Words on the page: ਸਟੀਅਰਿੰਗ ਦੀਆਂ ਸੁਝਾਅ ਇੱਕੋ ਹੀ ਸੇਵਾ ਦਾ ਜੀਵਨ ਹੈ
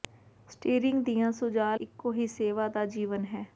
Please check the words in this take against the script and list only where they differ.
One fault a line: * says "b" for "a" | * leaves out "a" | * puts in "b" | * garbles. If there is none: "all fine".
all fine